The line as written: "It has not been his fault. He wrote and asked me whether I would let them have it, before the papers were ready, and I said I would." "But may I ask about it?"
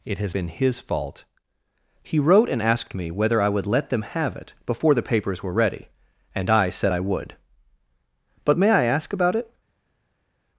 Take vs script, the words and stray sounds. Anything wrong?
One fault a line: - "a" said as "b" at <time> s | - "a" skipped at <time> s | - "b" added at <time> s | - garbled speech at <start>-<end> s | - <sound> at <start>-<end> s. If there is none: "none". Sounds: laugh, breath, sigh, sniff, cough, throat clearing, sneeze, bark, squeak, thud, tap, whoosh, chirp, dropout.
- "not" skipped at 0.3 s